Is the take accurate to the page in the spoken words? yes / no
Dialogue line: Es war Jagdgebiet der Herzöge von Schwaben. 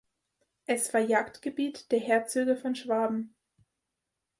yes